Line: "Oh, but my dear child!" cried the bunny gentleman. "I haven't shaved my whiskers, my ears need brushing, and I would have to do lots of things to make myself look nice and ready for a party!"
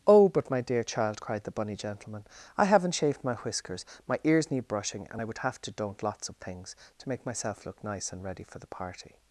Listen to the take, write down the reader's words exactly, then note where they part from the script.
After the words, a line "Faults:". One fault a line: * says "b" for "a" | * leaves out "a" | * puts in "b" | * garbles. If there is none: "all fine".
"Oh, but my dear child!" cried the bunny gentleman. "I haven't shaved my whiskers, my ears need brushing, and I would have to don't lots of things to make myself look nice and ready for the party!"
Faults:
* says "don't" for "do"
* says "the" for "a"